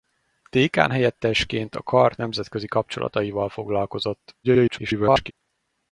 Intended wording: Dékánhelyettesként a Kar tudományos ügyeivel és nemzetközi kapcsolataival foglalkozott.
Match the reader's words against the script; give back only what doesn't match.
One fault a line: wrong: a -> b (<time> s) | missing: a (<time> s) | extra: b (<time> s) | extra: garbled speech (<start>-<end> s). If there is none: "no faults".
missing: tudományos ügyeivel és (2.1 s)
extra: garbled speech (4.4-5.3 s)